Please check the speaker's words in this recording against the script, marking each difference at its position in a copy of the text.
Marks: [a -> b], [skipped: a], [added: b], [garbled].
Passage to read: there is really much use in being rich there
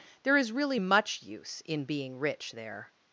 there is really much use in being rich there